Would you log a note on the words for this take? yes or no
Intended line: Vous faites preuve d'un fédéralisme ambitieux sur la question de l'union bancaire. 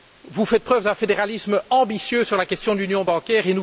no